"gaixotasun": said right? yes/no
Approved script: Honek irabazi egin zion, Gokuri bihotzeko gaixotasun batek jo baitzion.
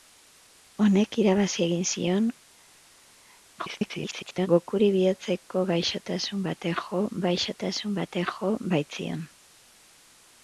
yes